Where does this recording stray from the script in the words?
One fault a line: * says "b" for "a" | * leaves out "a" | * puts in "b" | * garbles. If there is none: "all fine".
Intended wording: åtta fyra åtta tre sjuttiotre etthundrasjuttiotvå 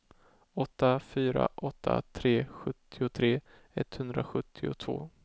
all fine